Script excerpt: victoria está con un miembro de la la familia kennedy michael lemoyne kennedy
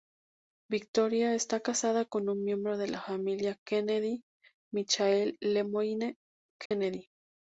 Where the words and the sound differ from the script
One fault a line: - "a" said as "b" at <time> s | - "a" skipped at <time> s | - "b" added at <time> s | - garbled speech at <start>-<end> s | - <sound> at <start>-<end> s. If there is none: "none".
- "casada" added at 1.6 s
- "la" skipped at 3.0 s
- dropout at 6.7-6.7 s